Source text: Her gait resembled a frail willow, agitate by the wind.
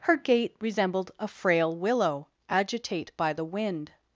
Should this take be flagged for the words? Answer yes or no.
no